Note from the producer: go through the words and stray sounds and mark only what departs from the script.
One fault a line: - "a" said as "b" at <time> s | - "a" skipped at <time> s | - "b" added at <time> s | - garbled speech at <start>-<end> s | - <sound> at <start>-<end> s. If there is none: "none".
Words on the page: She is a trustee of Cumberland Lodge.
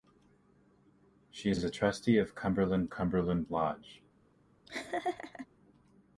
- "is" added at 1.5 s
- "Cumberland" added at 2.9 s
- laugh at 4.7-5.5 s